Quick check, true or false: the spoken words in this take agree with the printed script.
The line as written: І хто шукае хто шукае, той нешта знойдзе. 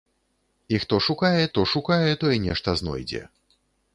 true